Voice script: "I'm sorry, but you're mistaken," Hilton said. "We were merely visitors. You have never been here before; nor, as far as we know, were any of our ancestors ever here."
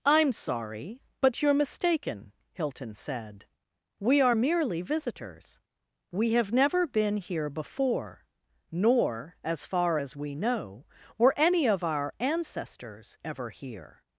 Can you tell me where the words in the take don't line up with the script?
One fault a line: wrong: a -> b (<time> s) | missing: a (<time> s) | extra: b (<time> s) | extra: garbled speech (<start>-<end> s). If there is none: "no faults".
wrong: were -> are (4.2 s)
wrong: You -> We (6.1 s)